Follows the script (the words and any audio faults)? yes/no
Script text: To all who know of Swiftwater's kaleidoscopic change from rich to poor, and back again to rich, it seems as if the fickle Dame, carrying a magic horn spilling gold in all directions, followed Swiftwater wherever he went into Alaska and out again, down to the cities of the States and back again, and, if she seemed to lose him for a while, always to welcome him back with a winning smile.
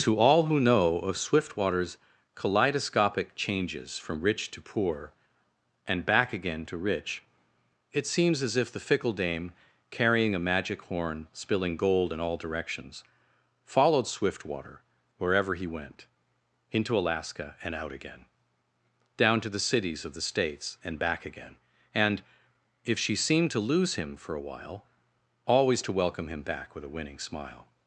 no